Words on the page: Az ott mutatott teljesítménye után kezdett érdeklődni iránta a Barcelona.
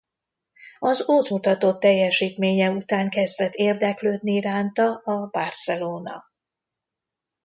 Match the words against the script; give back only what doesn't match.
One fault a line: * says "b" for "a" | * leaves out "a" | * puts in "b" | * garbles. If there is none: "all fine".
all fine